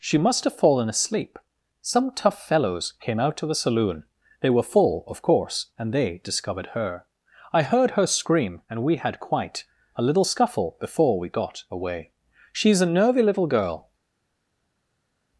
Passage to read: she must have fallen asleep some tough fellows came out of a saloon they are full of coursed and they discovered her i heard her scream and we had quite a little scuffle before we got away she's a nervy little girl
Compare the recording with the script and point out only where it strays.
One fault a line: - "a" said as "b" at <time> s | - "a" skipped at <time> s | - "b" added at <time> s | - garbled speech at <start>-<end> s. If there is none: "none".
- "are" said as "were" at 4.5 s
- "coursed" said as "course" at 5.2 s